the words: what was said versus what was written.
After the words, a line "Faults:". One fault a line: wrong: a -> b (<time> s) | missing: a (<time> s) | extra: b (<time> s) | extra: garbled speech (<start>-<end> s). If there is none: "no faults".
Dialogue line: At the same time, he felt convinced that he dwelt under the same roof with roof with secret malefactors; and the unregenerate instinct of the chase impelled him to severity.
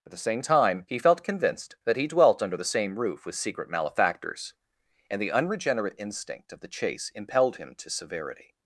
At the same time, he felt convinced that he dwelt under the same roof with secret malefactors; and the unregenerate instinct of the chase impelled him to severity.
Faults:
missing: roof with (3.3 s)